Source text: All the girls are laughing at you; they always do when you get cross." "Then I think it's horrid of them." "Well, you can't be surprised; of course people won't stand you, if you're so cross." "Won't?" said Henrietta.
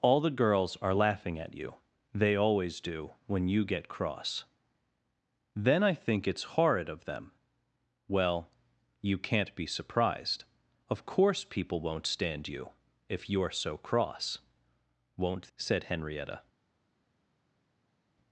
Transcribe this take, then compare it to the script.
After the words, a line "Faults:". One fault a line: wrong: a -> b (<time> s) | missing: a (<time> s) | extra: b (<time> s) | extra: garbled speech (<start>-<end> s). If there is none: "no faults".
All the girls are laughing at you; they always do when you get cross." "Then I think it's horrid of them." "Well, you can't be surprised; of course people won't stand you, if you're so cross." "Won't?" said Henrietta.
Faults:
no faults